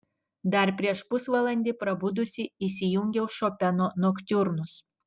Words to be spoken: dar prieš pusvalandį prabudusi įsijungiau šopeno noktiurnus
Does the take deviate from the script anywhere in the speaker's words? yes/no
no